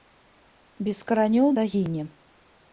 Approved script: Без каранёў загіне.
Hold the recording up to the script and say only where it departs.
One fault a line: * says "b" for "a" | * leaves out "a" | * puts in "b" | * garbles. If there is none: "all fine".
all fine